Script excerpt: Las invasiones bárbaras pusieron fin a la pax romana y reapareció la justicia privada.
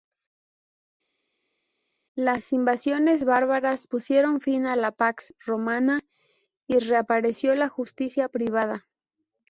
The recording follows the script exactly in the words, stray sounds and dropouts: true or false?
true